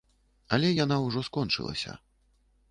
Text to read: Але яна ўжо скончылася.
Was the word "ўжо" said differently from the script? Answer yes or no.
no